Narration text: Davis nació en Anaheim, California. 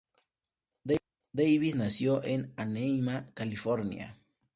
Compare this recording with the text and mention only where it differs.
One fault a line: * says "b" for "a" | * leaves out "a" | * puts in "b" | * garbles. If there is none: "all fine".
all fine